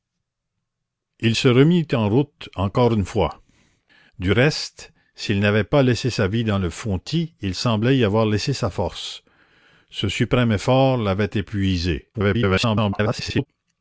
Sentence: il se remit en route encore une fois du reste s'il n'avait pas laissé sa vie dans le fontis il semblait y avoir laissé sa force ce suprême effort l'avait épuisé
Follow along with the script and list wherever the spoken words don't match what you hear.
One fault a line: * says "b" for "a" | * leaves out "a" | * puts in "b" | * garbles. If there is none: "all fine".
* garbles